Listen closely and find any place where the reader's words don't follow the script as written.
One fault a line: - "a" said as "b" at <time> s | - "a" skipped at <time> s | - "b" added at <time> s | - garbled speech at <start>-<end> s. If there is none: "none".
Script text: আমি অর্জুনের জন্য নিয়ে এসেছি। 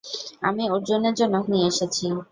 none